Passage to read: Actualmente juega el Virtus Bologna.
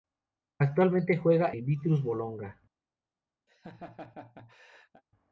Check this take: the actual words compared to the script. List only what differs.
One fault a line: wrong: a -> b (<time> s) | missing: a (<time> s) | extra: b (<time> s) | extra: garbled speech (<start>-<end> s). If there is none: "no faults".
no faults